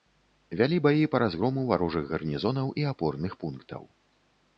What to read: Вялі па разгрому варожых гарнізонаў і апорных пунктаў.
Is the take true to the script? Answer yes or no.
no